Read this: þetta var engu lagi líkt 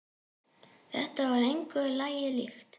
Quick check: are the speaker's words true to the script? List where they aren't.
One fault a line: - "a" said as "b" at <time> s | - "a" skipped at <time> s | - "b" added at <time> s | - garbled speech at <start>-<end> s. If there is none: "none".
none